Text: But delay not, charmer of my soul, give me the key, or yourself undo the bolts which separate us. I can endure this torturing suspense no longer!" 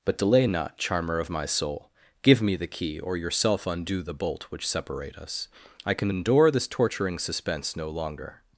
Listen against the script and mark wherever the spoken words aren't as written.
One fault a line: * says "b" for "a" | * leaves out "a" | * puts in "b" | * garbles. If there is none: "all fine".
* says "bolt" for "bolts"